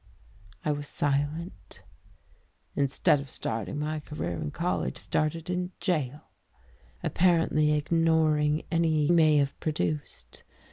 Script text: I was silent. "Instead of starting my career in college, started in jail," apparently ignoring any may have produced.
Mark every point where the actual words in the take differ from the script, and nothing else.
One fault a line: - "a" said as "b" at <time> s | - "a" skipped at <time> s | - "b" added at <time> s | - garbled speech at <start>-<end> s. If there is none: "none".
none